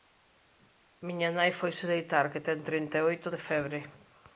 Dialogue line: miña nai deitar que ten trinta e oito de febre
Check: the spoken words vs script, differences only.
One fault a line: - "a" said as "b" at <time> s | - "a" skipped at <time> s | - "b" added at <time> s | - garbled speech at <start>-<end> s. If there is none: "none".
- "foise" added at 1.6 s